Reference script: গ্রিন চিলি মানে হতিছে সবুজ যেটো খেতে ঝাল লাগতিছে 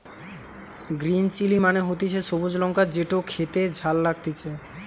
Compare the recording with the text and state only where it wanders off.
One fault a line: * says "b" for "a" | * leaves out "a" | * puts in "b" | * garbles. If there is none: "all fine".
* puts in "লঙ্কা"